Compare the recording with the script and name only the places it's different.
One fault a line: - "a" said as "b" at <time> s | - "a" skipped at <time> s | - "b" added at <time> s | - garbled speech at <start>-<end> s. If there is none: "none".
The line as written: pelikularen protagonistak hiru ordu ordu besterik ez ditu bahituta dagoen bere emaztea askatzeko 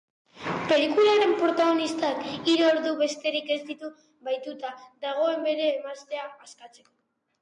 - "ordu" skipped at 2.9 s